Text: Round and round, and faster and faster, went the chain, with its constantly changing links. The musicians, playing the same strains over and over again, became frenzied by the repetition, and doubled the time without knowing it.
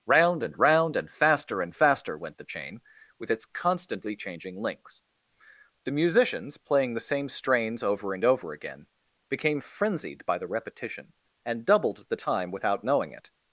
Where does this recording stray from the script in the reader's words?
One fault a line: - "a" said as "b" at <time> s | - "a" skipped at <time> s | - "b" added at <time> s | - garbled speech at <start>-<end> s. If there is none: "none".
none